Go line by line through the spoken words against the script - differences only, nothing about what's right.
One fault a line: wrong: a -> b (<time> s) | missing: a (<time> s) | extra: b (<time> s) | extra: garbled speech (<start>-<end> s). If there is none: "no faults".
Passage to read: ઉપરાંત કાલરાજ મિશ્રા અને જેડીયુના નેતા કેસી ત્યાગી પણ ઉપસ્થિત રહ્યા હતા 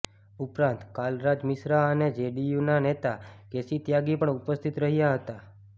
no faults